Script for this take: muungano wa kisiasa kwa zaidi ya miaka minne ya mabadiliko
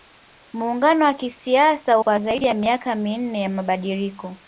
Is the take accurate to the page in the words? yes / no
yes